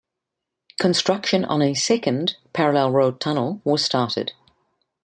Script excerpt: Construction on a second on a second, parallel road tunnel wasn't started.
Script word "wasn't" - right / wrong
wrong